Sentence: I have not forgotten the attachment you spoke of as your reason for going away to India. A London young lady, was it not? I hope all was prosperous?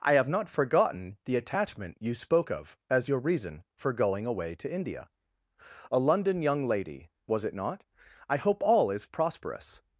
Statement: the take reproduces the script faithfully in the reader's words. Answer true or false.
false